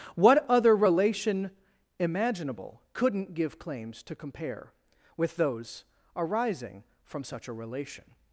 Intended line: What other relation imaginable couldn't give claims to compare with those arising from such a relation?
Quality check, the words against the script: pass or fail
pass